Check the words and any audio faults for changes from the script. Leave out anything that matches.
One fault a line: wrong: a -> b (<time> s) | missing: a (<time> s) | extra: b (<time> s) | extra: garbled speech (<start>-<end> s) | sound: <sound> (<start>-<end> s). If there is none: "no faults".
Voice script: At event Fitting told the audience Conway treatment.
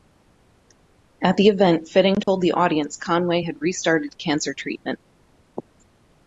extra: the (1.3 s)
sound: dropout (2.2-2.3 s)
extra: had restarted cancer (3.4 s)